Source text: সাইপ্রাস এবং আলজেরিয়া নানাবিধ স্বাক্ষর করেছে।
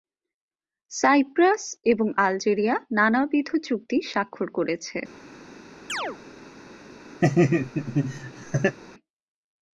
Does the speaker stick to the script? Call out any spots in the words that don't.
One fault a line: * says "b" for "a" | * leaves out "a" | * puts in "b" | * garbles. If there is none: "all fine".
* puts in "চুক্তি"